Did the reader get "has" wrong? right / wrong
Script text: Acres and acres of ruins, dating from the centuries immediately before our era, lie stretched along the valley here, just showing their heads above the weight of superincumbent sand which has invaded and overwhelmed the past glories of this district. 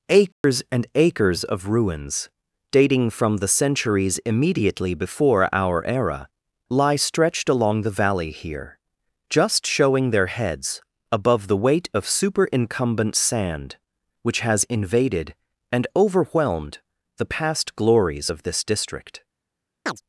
right